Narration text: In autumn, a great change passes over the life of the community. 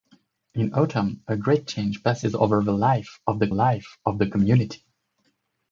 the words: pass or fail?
fail